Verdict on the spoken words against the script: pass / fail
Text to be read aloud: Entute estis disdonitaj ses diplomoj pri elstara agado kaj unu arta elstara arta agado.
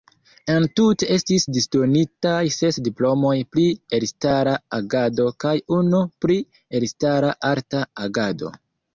fail